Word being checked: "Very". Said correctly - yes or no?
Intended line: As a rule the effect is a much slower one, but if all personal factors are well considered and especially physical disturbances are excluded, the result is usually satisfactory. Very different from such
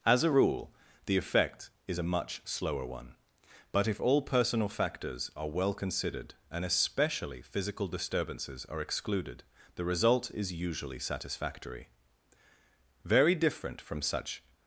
yes